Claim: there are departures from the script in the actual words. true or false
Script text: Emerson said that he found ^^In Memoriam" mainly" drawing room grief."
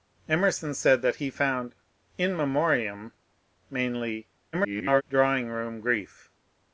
true